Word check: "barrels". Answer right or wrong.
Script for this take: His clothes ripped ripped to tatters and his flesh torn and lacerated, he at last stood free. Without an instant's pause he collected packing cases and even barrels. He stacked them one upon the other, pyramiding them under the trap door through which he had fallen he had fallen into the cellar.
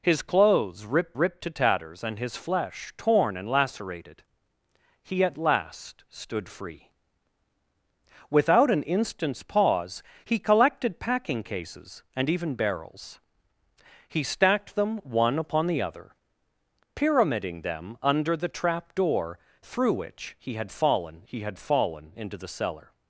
right